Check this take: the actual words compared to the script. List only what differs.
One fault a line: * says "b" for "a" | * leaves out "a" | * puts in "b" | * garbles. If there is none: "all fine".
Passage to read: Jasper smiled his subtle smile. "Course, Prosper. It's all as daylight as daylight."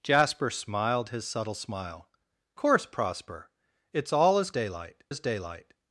all fine